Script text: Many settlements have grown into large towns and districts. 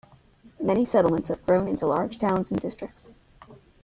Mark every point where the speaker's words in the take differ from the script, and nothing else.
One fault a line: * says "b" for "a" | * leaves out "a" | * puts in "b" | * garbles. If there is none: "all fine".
all fine